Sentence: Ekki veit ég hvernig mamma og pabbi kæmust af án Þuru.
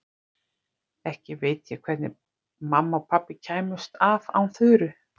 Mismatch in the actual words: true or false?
false